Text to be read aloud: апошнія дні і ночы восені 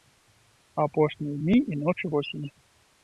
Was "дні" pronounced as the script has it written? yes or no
yes